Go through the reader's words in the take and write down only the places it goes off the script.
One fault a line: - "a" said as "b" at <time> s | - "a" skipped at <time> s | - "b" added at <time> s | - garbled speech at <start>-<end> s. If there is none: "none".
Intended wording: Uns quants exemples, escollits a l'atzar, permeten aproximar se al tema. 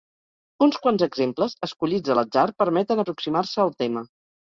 none